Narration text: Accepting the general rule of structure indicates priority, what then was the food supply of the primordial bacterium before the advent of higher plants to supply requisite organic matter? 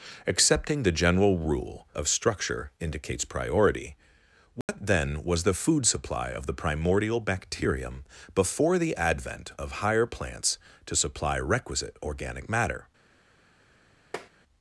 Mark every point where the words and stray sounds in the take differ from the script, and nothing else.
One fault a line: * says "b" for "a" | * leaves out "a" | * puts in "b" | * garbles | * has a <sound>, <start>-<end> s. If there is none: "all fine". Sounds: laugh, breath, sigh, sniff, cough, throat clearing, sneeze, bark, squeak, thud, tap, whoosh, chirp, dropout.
* has a dropout, 4.6-4.7 s
* has a tap, 14.1-14.3 s